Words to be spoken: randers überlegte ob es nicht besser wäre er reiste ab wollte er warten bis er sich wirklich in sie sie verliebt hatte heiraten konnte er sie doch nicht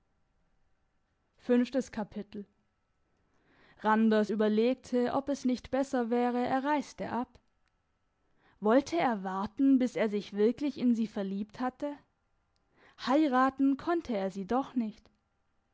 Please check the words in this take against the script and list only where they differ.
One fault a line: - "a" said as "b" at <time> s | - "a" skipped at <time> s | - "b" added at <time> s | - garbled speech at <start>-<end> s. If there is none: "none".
- "sie" skipped at 11.1 s